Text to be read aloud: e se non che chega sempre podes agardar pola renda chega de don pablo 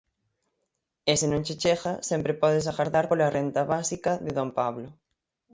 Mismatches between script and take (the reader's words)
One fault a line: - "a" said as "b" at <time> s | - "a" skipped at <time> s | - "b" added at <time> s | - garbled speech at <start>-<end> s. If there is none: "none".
- "chega" said as "básica" at 3.7 s